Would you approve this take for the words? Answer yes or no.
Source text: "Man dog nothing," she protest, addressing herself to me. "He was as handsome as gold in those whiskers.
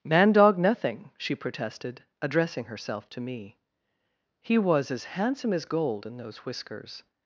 no